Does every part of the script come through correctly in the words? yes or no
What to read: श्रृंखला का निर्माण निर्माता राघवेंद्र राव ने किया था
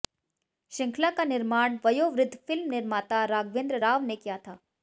no